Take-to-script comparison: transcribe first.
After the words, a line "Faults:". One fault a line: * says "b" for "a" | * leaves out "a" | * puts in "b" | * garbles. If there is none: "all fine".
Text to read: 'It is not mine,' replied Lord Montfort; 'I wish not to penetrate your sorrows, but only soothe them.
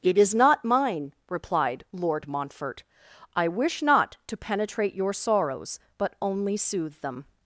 'It is not mine,' replied Lord Montfort; 'I wish not to penetrate your sorrows, but only soothe them.
Faults:
all fine